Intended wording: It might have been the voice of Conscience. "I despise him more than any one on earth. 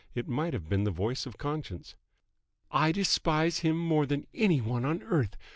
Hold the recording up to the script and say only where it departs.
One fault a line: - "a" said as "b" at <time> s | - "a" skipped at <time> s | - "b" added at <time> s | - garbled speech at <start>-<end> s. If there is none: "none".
none